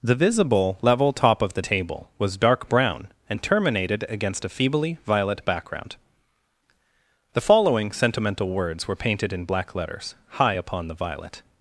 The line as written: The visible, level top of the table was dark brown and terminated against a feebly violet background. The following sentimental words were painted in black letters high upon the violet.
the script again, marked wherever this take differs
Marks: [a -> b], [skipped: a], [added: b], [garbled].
The visible, level top of the table was dark brown and terminated against a feebly violet background. The following sentimental words were painted in black letters high upon the violet.